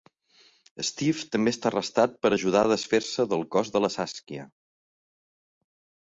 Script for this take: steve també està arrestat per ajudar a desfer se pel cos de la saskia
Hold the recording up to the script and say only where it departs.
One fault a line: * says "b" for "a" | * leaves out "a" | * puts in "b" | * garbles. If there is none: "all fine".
* says "del" for "pel"